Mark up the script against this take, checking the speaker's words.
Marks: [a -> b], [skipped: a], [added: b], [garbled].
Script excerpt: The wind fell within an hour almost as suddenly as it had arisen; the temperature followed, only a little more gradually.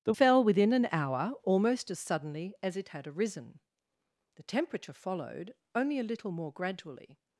The [skipped: wind] fell within an hour almost as suddenly as it had arisen; the temperature followed, only a little more gradually.